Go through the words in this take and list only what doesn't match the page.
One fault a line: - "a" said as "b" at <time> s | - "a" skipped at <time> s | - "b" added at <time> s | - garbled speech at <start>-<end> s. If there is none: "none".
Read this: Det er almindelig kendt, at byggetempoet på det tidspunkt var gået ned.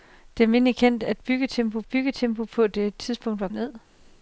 - "byggetempoet" added at 1.9 s
- "gået" skipped at 3.5 s